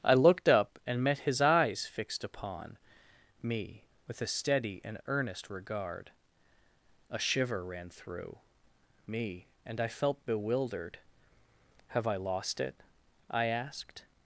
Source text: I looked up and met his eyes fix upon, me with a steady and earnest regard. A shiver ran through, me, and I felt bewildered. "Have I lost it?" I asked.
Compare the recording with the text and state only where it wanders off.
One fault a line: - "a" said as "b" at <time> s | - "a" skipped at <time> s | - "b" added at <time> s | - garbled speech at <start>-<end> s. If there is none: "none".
- "fix" said as "fixed" at 1.9 s